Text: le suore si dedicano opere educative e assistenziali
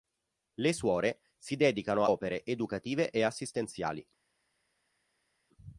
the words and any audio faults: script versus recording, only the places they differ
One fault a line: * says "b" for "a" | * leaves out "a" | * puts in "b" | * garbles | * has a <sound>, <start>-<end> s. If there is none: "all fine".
all fine